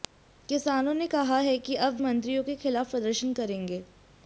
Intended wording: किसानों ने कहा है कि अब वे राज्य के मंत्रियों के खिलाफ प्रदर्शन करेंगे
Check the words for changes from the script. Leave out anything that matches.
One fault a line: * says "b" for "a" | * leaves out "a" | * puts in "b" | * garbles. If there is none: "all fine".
* leaves out "वे राज्य के"